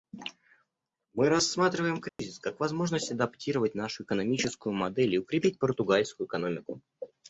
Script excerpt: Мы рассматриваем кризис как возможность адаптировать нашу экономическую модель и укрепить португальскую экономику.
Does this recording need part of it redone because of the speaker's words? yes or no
no